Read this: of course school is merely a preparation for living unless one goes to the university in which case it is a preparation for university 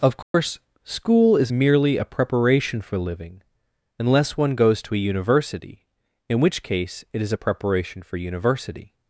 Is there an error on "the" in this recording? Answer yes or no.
yes